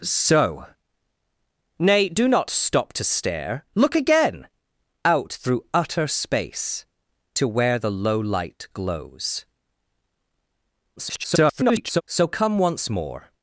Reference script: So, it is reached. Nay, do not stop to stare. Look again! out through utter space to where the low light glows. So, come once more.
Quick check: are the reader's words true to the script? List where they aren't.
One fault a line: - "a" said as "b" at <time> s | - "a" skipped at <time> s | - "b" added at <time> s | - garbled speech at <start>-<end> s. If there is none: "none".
- "it is reached" skipped at 0.7 s
- garbled speech at 11.0-12.0 s